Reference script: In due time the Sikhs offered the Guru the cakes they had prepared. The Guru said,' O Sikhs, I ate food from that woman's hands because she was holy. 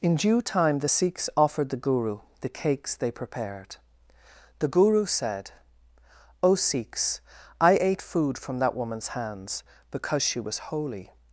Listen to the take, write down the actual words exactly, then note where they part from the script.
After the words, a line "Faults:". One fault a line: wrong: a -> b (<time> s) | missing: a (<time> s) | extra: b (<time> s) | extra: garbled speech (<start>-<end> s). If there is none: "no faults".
In due time the Sikhs offered the Guru the cakes they prepared. The Guru said,' O Sikhs, I ate food from that woman's hands because she was holy.
Faults:
missing: had (3.1 s)